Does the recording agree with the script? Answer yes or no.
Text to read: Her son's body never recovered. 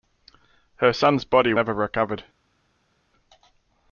yes